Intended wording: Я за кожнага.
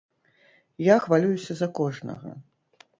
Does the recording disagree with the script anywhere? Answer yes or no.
yes